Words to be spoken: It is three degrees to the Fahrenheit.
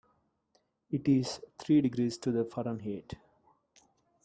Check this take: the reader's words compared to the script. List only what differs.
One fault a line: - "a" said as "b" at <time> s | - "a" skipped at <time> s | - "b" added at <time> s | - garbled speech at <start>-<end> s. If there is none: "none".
none